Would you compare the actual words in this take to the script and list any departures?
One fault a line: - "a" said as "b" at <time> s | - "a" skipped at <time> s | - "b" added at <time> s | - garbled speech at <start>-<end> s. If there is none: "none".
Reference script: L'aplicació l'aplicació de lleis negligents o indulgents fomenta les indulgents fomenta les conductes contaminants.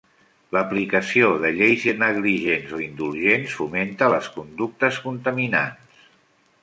- "l'aplicació" skipped at 1.3 s
- "indulgents fomenta les" skipped at 4.3 s